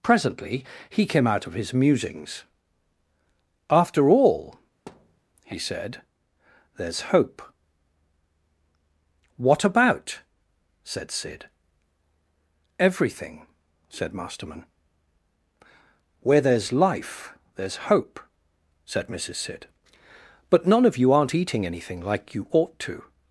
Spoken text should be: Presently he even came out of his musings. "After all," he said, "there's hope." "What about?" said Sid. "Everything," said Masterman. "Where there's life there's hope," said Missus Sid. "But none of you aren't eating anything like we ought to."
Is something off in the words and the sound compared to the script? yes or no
yes